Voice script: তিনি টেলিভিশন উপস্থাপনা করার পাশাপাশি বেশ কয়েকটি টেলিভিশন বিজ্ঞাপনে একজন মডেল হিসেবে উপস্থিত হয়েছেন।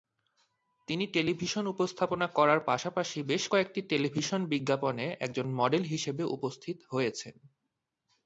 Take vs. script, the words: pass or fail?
pass